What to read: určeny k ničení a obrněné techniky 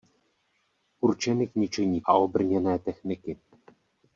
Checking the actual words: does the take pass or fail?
pass